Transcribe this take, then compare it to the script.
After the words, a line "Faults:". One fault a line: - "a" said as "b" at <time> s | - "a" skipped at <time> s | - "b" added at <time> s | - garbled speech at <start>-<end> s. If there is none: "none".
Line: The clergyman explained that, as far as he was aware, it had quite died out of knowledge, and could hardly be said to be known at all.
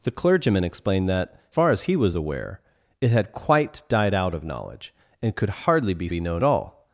The clergyman explained that, far as he was aware, it had quite died out of knowledge, and could hardly be be known all.
Faults:
- "as" skipped at 1.4 s
- "said to" skipped at 6.1 s
- "at" skipped at 6.4 s